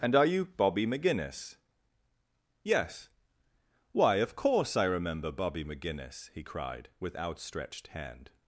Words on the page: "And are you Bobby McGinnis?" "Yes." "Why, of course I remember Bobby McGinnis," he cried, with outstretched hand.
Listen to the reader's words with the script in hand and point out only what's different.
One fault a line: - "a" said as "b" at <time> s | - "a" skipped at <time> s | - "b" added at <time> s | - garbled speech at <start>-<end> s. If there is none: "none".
none